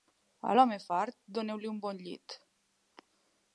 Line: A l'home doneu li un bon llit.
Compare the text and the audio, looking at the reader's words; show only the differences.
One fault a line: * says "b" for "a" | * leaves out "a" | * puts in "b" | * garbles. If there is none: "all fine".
* puts in "fart"